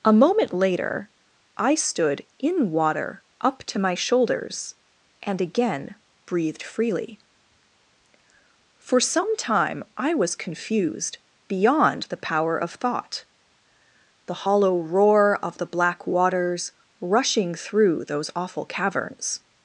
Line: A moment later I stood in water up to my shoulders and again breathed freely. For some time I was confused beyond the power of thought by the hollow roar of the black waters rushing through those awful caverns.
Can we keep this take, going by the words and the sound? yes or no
no